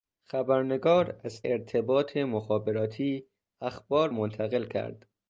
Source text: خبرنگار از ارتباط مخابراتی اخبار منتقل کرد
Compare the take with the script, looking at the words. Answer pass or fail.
pass